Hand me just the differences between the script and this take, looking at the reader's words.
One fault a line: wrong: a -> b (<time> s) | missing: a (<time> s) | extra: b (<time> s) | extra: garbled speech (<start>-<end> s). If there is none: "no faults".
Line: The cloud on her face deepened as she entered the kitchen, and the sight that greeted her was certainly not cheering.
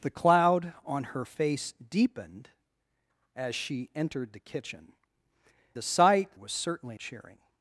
missing: and (4.9 s)
missing: that greeted her (6.3 s)
missing: not (7.0 s)